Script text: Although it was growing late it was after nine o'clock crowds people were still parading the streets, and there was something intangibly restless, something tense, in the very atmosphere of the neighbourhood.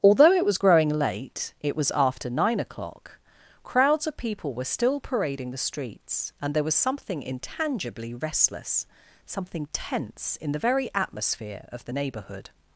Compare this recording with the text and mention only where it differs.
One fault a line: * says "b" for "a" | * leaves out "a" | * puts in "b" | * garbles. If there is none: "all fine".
* puts in "of"